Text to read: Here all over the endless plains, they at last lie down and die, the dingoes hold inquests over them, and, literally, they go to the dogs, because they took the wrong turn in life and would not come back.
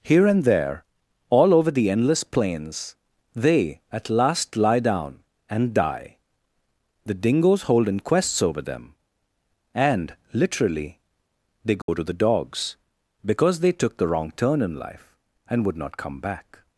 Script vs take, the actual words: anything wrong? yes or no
yes